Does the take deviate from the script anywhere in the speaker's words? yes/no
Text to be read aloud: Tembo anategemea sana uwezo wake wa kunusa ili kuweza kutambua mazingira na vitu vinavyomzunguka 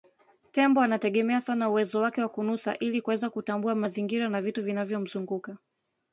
no